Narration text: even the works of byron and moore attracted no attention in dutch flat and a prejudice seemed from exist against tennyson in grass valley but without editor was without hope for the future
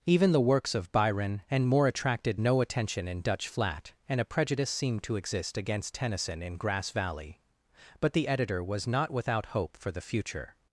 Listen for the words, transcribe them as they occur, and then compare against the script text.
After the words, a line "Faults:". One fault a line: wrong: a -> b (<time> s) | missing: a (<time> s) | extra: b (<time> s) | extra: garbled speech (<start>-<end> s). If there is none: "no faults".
even the works of byron and moore attracted no attention in dutch flat and a prejudice seemed to exist against tennyson in grass valley but the editor was not without hope for the future
Faults:
wrong: from -> to (5.0 s)
wrong: without -> the (8.1 s)
extra: not (8.9 s)